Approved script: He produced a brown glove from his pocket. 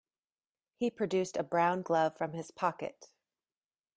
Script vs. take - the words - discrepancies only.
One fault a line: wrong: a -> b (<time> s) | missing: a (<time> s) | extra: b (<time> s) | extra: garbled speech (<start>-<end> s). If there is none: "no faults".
no faults